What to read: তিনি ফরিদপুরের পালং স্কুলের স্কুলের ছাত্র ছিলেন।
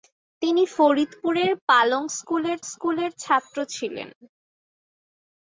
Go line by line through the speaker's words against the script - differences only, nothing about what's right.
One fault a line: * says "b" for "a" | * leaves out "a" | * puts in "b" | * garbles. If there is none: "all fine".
all fine